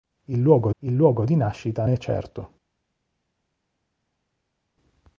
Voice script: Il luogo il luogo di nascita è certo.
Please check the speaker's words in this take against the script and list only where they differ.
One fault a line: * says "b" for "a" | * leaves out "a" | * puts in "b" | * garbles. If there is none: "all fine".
all fine